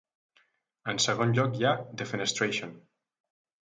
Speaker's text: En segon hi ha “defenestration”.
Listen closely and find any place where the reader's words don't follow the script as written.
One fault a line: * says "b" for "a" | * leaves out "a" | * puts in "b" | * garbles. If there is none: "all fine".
* puts in "lloc"